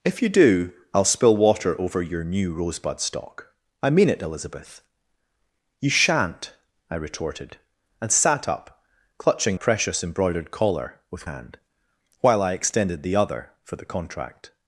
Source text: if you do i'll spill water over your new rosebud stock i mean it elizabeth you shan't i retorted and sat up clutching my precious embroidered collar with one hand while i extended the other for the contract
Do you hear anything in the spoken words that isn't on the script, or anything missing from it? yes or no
yes